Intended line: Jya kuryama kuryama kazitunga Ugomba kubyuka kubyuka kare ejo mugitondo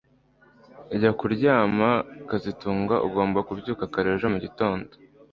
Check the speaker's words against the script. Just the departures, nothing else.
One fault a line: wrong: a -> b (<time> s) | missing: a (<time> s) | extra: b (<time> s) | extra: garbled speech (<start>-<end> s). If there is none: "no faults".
missing: kuryama (1.9 s)
missing: kubyuka (3.8 s)